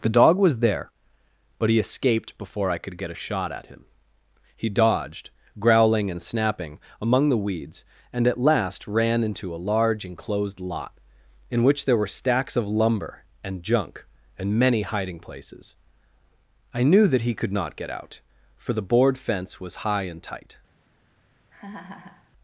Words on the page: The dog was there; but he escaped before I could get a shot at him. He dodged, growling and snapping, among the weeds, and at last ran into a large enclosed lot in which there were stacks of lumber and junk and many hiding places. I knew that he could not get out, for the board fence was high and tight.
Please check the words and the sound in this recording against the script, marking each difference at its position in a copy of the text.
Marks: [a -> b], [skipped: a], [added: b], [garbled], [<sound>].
The dog was there; but he escaped before I could get a shot at him. He dodged, growling and snapping, among the weeds, and at last ran into a large enclosed lot in which there were stacks of lumber and junk and many hiding places. I knew that he could not get out, for the board fence was high and tight. [laugh]